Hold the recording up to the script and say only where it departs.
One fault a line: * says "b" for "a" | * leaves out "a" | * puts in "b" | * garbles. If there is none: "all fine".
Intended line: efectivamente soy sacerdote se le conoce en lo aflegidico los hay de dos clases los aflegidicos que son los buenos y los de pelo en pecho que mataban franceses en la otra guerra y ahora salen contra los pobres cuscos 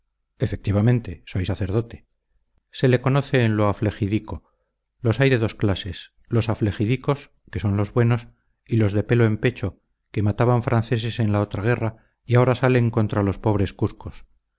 all fine